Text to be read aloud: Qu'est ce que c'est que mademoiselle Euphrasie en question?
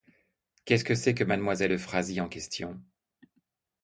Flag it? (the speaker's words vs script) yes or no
no